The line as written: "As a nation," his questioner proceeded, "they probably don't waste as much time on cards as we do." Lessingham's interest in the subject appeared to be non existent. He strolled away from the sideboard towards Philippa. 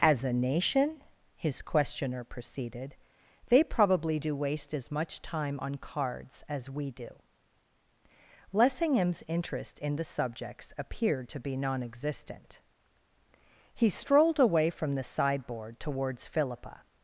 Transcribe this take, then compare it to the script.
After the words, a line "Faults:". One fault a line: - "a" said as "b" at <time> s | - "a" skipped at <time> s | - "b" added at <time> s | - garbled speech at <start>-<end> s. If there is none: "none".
"As a nation," his questioner proceeded, "they probably do waste as much time on cards as we do." Lessingham's interest in the subjects appeared to be non existent. He strolled away from the sideboard towards Philippa.
Faults:
- "don't" said as "do" at 4.2 s
- "subject" said as "subjects" at 10.0 s